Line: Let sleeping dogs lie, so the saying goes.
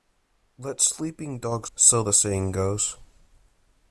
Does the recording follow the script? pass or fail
fail